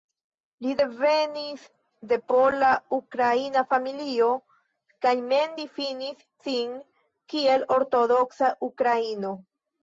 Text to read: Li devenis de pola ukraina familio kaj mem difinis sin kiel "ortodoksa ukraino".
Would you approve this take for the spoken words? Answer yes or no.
yes